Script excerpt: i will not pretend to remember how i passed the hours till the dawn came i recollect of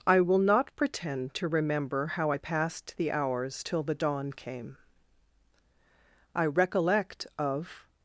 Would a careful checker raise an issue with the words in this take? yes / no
no